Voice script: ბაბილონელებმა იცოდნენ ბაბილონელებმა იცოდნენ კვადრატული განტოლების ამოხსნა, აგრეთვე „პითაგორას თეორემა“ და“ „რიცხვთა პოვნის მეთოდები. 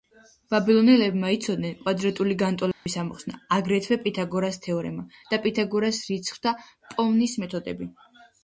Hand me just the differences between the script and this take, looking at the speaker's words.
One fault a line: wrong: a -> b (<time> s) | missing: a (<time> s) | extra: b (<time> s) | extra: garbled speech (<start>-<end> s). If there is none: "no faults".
missing: ბაბილონელებმა იცოდნენ (1.8 s)
extra: პითაგორას (5.5 s)